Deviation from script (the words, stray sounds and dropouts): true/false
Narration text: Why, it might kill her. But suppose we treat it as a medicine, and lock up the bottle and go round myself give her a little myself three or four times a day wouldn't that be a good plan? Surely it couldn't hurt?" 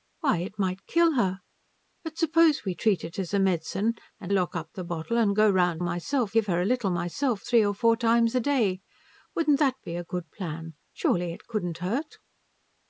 false